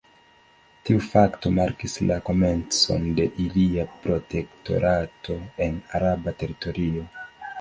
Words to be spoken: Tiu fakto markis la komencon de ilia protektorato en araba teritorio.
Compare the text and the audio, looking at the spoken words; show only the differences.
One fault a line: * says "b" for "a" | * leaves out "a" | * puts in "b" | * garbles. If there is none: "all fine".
all fine